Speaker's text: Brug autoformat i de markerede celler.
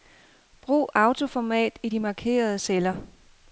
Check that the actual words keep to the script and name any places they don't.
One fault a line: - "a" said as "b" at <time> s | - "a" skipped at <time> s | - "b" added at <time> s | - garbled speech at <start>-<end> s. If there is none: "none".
none